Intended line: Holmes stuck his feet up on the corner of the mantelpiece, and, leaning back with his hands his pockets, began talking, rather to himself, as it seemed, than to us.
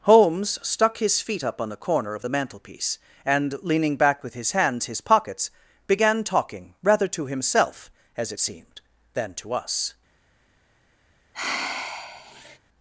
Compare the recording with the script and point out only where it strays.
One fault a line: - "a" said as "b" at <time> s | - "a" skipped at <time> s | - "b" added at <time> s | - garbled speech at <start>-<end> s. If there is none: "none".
none